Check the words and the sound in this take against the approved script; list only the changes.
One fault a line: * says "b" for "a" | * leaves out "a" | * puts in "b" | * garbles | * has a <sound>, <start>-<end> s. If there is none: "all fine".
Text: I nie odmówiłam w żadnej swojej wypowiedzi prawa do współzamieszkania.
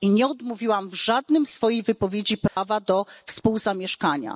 * has a dropout, 2.5-2.6 s